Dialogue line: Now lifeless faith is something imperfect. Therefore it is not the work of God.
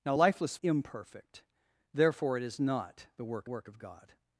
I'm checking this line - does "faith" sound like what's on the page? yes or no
no